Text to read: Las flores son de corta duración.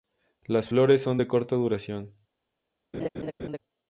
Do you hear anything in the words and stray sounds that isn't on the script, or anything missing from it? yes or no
yes